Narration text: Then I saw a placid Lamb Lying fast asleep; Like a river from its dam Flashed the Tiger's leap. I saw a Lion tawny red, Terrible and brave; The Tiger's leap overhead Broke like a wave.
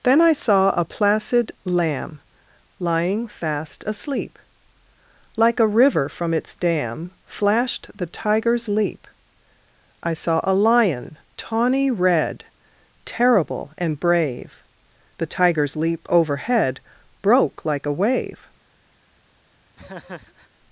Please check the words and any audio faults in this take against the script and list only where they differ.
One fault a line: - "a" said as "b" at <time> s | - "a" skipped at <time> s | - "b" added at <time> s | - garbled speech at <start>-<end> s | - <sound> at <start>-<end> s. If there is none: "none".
- laugh at 19.8-20.5 s